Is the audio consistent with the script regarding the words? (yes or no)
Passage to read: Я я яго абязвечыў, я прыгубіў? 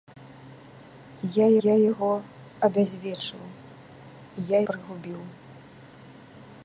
yes